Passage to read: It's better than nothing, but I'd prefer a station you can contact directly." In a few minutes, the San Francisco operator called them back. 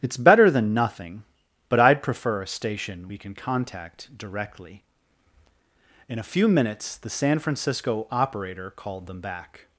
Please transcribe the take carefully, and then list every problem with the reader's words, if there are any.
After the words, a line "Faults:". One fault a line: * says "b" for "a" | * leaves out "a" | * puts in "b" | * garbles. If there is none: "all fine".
It's better than nothing, but I'd prefer a station we can contact directly." In a few minutes, the San Francisco operator called them back.
Faults:
* says "we" for "you"